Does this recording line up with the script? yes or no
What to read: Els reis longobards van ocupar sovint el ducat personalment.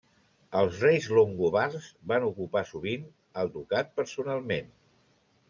yes